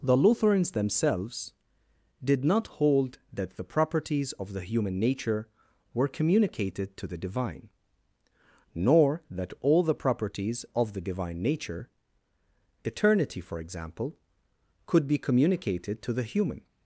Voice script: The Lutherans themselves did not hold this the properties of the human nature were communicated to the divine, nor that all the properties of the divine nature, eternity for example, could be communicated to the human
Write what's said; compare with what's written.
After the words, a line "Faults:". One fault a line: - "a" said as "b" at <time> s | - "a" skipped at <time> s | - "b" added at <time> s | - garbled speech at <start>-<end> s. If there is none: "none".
The Lutherans themselves did not hold that the properties of the human nature were communicated to the divine, nor that all the properties of the divine nature, eternity for example, could be communicated to the human
Faults:
- "this" said as "that" at 3.3 s